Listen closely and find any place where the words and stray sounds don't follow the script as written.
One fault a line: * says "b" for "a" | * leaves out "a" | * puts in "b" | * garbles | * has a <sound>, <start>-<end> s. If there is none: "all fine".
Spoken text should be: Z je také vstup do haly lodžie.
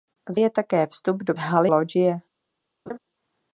* has a laugh, 2.9-3.0 s